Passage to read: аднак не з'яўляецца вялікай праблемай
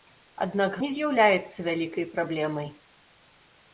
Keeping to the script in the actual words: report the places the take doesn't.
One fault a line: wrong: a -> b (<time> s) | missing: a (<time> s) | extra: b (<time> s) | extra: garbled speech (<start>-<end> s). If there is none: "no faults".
no faults